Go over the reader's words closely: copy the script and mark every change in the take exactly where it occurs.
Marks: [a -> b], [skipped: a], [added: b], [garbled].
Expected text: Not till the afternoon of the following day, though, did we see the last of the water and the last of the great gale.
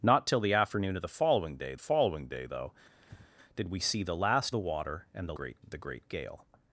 Not till the afternoon of the following day, [added: following day] though, did we see the last [skipped: of] the water and the [last -> great] of the great gale.